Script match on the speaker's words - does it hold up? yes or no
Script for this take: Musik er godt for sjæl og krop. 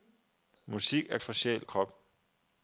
no